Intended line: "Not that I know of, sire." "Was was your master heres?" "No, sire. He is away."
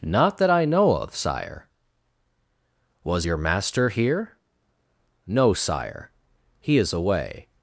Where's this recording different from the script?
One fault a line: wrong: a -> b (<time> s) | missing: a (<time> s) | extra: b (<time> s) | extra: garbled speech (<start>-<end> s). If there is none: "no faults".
missing: was (3.3 s)
wrong: heres -> here (3.9 s)